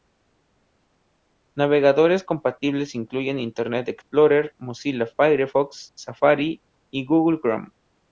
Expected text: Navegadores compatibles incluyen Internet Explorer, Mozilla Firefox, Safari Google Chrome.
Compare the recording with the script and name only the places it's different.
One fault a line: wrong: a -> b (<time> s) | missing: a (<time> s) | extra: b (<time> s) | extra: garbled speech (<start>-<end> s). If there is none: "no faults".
extra: y (6.9 s)